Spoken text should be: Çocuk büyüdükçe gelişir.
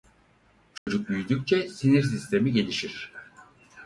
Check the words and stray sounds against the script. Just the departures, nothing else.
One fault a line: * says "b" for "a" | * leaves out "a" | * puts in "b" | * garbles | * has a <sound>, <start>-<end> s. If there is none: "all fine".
* has a dropout, 0.8-0.9 s
* puts in "sinir sistemi"